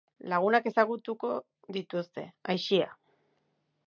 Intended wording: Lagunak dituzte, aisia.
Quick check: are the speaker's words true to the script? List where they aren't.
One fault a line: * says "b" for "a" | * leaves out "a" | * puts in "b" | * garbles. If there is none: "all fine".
* puts in "ezagutuko"